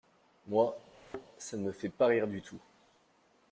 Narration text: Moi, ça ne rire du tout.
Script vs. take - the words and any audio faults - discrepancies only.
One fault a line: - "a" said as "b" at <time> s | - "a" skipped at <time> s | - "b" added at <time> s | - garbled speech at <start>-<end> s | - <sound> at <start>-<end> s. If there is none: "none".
- thud at 0.9-1.3 s
- "me fait pas" added at 1.6 s